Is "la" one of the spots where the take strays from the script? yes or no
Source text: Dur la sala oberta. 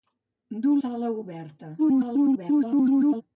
yes